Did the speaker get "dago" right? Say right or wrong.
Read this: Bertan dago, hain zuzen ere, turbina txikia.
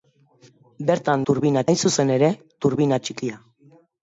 wrong